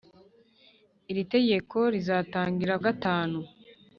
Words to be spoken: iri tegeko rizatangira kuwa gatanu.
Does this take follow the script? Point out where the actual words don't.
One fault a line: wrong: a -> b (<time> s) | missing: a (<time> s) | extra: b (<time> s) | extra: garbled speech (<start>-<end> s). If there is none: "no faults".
missing: kuwa (2.8 s)